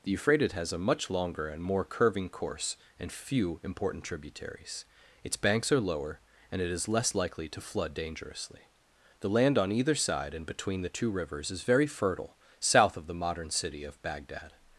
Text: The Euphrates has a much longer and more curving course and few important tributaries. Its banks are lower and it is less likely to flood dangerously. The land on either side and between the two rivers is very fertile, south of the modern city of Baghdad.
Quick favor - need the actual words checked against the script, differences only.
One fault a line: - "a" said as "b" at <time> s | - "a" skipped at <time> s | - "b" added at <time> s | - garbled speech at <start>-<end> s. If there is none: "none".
none